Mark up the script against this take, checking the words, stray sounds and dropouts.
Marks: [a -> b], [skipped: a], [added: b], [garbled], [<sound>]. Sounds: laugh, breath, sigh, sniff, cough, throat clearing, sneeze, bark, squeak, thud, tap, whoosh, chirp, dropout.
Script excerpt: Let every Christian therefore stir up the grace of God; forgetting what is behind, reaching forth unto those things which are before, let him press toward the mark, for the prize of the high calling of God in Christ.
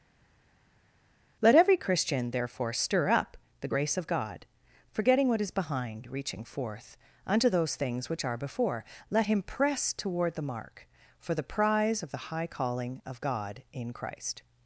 Let every Christian therefore stir up the grace of God; forgetting what is behind, reaching forth unto those things which are before, let him press toward the mark, for the prize of the high calling of God in Christ.